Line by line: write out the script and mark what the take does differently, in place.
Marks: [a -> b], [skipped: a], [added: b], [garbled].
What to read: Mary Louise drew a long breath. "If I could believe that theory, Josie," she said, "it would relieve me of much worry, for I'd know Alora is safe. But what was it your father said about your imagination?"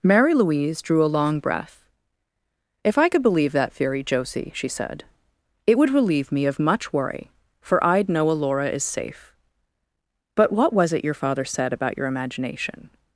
Mary Louise drew a long breath. "If I could believe that theory, Josie," she said, "it would relieve me of much worry, for I'd know Alora is safe. But what was it your father said about your imagination?"